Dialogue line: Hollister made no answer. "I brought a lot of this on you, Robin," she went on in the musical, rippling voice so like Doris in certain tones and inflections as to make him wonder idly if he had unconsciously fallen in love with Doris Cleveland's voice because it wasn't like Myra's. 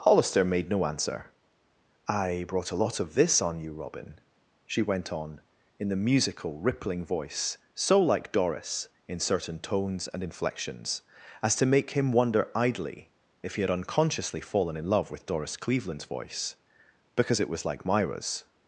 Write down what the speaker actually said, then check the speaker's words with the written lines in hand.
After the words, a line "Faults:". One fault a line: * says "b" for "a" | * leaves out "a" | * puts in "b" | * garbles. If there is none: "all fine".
Hollister made no answer. "I brought a lot of this on you, Robin," she went on in the musical, rippling voice so like Doris in certain tones and inflections as to make him wonder idly if he had unconsciously fallen in love with Doris Cleveland's voice because it was like Myra's.
Faults:
* says "was" for "wasn't"